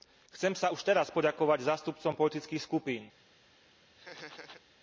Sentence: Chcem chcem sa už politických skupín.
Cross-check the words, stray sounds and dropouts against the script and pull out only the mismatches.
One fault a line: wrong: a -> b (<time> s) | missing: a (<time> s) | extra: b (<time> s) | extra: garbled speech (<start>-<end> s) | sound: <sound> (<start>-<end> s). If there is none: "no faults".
missing: chcem (0.5 s)
extra: teraz poďakovať zástupcom (0.8 s)
sound: laugh (4.0-4.6 s)